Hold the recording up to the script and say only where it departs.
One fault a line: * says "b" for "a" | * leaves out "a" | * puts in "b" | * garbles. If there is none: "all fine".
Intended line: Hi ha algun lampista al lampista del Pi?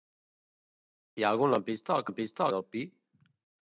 all fine